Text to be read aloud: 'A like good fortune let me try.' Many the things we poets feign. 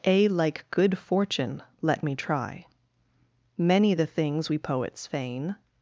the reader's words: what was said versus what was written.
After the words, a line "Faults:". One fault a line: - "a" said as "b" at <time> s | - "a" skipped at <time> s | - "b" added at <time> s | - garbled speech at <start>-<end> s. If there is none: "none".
'A like good fortune let me try.' Many the things we poets feign.
Faults:
none